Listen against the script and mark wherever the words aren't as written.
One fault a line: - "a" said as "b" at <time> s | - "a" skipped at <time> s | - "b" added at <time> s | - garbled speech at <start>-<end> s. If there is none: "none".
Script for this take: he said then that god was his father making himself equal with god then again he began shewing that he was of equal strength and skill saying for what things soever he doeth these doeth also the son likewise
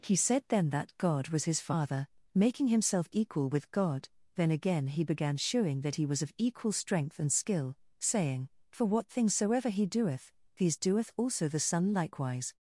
none